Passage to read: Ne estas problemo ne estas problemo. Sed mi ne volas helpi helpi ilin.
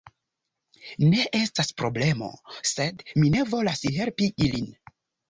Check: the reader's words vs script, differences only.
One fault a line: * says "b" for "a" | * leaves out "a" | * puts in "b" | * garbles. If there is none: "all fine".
* leaves out "ne estas problemo"
* leaves out "helpi"